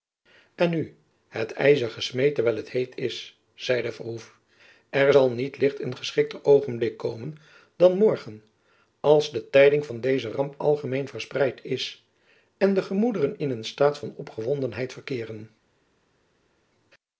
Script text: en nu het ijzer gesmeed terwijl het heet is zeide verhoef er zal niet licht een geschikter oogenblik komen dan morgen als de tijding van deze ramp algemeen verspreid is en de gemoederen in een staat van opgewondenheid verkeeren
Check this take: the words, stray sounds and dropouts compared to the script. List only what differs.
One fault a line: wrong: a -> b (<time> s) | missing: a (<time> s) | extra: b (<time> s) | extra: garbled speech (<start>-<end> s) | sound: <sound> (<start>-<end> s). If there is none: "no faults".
no faults